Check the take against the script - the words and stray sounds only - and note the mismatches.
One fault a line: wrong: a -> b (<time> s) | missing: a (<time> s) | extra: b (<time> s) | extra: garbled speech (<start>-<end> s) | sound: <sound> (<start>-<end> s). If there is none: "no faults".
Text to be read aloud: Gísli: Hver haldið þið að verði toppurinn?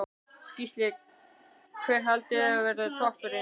no faults